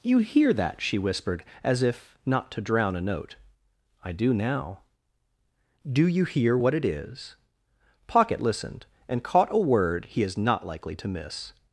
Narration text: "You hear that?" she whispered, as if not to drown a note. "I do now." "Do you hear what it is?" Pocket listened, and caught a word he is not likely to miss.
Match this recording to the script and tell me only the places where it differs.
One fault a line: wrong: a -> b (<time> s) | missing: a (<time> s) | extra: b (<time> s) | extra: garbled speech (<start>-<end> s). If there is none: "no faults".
no faults